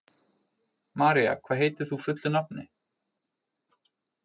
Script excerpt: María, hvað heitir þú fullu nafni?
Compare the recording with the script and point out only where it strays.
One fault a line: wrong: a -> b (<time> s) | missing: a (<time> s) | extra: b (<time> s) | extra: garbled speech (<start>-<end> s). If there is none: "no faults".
no faults